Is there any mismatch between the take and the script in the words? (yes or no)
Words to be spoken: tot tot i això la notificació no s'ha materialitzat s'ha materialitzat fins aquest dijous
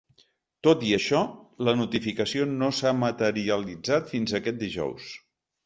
yes